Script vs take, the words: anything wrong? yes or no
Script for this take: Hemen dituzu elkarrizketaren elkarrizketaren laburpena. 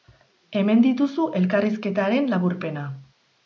yes